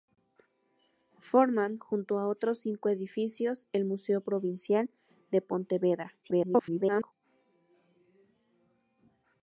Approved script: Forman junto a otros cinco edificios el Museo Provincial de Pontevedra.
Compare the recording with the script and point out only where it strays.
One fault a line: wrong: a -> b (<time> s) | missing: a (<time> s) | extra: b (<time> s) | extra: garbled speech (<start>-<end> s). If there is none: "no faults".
extra: garbled speech (6.2-7.1 s)